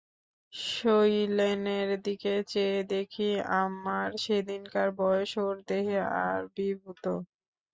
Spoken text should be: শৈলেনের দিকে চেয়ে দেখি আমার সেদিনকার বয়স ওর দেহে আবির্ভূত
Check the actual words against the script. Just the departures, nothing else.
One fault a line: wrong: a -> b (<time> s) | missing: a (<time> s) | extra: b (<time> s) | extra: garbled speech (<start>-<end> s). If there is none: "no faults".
no faults